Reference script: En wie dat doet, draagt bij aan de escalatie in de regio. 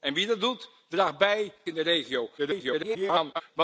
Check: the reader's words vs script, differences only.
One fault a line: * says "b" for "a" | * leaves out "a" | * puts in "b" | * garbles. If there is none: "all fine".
* leaves out "aan de escalatie"
* garbles